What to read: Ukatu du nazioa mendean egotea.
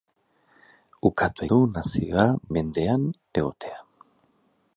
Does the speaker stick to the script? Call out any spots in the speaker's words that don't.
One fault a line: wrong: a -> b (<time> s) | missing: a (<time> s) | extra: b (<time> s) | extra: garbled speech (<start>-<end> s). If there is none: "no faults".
no faults